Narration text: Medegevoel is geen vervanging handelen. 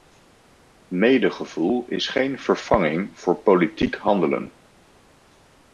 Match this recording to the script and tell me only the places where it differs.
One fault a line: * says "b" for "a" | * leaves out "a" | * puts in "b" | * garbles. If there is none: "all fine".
* puts in "voor politiek"